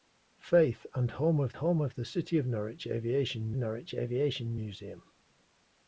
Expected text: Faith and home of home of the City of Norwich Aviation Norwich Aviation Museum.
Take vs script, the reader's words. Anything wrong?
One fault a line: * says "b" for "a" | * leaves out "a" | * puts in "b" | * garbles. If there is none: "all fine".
all fine